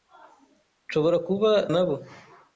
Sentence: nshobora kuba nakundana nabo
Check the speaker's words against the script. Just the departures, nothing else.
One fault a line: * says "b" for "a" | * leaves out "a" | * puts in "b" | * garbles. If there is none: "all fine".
* leaves out "nakundana"